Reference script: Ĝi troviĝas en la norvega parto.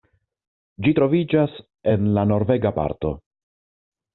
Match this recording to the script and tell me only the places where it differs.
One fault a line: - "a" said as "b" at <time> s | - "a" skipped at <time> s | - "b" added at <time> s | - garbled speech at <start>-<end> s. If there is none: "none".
none